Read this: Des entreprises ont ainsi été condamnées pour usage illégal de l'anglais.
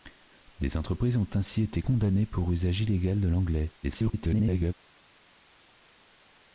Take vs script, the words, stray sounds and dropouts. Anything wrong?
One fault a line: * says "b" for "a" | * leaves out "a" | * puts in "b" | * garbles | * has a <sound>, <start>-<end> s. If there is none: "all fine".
* garbles